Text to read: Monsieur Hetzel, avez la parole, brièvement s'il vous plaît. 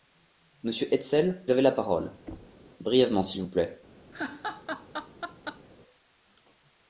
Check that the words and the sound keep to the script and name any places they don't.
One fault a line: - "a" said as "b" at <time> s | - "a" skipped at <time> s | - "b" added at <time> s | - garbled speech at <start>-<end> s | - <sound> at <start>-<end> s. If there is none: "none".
- thud at 2.3-2.6 s
- laugh at 4.1-5.6 s